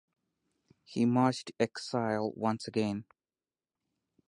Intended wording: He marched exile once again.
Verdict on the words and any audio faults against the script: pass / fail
pass